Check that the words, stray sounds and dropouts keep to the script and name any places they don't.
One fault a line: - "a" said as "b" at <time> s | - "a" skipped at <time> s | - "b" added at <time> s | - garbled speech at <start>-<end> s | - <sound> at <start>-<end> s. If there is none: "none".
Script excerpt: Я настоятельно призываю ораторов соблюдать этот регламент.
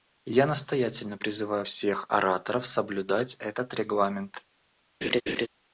- "всех" added at 1.6 s
- laugh at 5.0-5.5 s